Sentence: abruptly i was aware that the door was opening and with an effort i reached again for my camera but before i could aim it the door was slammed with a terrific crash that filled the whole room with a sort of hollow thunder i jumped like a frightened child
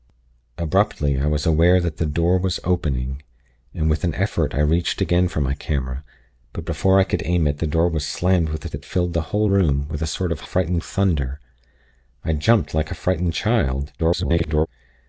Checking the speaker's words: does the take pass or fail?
fail